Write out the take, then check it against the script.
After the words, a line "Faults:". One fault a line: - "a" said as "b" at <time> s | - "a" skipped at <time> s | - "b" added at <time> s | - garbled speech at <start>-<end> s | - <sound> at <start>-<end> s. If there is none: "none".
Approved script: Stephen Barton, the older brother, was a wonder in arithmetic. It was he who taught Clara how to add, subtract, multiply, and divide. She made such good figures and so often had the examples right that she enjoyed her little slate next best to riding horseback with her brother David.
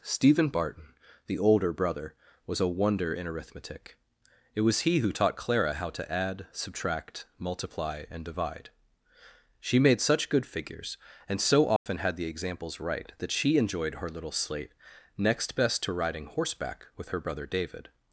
Stephen Barton, the older brother, was a wonder in arithmetic. It was he who taught Clara how to add, subtract, multiply, and divide. She made such good figures and so often had the examples right that she enjoyed her little slate next best to riding horseback with her brother David.
Faults:
- dropout at 11.8-11.9 s